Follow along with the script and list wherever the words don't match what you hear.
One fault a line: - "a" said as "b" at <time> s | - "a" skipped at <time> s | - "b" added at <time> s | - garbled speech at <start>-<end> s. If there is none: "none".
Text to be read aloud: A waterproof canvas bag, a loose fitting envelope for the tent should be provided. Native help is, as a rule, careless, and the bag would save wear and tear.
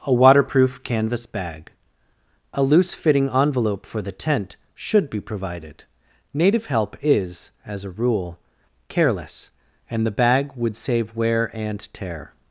none